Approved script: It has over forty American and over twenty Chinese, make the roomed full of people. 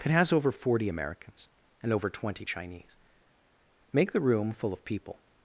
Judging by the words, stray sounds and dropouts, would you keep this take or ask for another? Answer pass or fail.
fail